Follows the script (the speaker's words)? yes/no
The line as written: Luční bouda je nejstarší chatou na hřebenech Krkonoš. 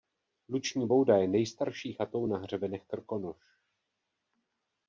yes